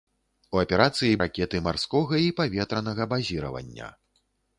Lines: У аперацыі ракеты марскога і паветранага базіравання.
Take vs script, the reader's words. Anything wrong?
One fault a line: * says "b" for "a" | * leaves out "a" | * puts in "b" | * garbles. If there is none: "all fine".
all fine